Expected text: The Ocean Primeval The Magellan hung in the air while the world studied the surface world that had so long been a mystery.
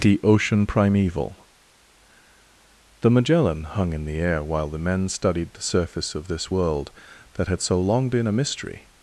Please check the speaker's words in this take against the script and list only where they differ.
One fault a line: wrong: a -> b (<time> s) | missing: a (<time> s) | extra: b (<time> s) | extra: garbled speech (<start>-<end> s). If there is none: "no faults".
wrong: world -> men (4.8 s)
extra: of this (6.2 s)